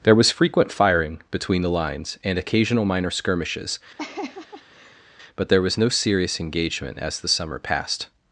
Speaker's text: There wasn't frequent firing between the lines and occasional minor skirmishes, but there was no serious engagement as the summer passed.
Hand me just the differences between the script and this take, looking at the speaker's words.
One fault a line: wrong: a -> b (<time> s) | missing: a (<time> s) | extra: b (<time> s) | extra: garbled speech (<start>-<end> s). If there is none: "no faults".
wrong: wasn't -> was (0.1 s)